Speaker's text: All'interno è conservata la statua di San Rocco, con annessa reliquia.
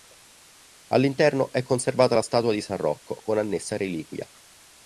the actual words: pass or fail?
pass